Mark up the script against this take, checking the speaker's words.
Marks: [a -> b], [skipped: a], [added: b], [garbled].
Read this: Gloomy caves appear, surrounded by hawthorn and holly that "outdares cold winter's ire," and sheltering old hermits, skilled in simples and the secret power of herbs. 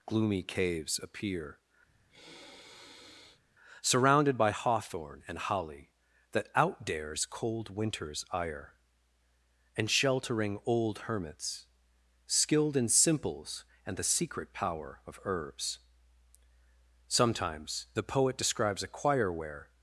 Gloomy caves appear, surrounded by hawthorn and holly that "outdares cold winter's ire," and sheltering old hermits, skilled in simples and the secret power of herbs. [added: Sometimes the poet describes a choir where]